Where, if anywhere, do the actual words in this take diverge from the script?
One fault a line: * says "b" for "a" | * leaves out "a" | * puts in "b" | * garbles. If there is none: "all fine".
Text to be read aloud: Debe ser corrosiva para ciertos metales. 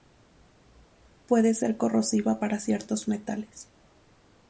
* says "Puede" for "Debe"